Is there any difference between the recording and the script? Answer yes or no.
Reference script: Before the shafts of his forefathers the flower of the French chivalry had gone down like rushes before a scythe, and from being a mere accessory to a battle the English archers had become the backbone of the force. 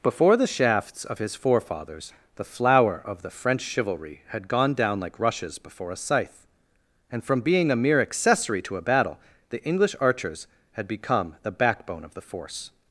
no